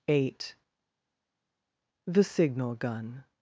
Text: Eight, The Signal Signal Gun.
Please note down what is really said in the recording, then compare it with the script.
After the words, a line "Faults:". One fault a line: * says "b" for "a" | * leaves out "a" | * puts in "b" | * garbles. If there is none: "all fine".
Eight, The Signal Gun.
Faults:
* leaves out "Signal"